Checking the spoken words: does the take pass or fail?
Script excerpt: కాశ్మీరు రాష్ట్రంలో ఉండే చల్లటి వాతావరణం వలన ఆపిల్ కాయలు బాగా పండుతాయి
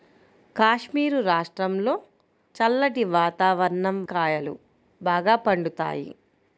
fail